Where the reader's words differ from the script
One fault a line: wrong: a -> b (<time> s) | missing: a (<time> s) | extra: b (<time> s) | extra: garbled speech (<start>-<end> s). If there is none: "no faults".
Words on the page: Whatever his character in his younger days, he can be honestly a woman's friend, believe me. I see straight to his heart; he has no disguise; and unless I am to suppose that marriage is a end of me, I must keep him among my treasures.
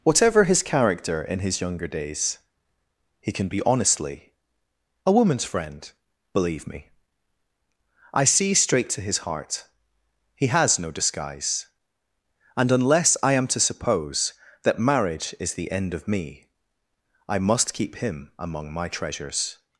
wrong: a -> the (15.5 s)